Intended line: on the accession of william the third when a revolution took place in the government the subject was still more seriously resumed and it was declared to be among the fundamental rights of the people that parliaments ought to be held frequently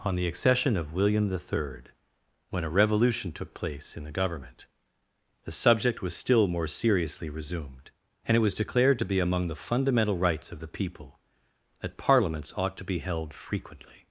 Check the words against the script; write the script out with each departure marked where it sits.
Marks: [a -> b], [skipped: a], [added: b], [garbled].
on the accession of william the third when a revolution took place in the government the subject was still more seriously resumed and it was declared to be among the fundamental rights of the people that parliaments ought to be held frequently